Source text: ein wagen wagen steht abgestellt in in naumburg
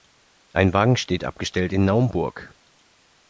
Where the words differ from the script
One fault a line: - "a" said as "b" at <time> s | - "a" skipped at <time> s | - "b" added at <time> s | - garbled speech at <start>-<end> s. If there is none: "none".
- "wagen" skipped at 1.0 s
- "in" skipped at 1.9 s